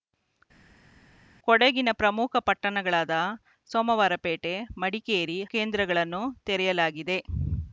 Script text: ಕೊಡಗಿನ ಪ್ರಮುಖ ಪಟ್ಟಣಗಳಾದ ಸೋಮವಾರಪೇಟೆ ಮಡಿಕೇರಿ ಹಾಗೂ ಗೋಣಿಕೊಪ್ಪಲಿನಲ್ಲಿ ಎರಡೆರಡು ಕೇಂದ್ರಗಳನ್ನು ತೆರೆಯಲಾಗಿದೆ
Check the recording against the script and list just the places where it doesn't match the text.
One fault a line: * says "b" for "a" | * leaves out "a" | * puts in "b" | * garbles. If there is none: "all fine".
* leaves out "ಹಾಗೂ ಗೋಣಿಕೊಪ್ಪಲಿನಲ್ಲಿ ಎರಡೆರಡು"